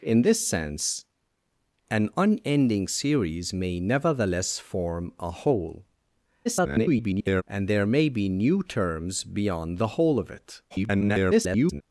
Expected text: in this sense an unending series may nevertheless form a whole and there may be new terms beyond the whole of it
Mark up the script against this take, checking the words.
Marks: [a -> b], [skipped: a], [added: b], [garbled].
in this sense an unending series may nevertheless form a whole [garbled] and there may be new terms beyond the whole of it [garbled]